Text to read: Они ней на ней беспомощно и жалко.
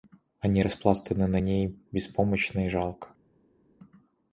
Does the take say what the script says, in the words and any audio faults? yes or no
no